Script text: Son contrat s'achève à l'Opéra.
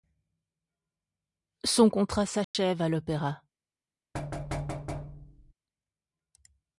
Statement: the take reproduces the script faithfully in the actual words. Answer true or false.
true